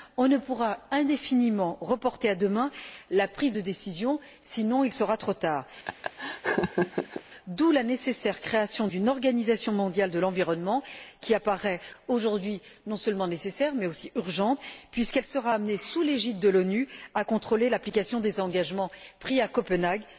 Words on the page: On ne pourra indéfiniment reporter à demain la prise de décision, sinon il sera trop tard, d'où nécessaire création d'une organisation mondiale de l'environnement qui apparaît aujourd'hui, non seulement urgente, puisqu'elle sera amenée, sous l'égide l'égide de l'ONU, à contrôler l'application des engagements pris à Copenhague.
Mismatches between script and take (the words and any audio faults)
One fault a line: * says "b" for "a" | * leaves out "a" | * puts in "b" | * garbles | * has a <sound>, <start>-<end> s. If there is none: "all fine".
* has a laugh, 5.8-7.2 s
* puts in "la"
* puts in "nécessaire mais aussi"
* leaves out "l'égide"